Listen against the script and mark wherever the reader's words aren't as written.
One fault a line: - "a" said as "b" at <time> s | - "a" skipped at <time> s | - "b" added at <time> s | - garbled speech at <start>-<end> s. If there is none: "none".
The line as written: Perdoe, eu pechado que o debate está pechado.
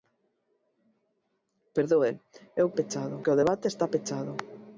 none